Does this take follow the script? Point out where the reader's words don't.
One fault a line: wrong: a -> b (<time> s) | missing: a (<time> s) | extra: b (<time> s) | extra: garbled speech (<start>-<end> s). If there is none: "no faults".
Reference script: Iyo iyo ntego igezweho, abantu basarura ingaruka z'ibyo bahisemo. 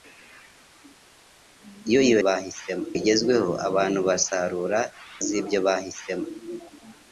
wrong: ntego -> bahisemo (2.3 s)
missing: ingaruka (4.8 s)